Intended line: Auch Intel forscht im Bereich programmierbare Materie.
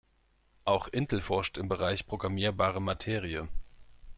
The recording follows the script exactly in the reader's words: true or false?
true